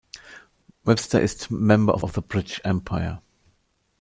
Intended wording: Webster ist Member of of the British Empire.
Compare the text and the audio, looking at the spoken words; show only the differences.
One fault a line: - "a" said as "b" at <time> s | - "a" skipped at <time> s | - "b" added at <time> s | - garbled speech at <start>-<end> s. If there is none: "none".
none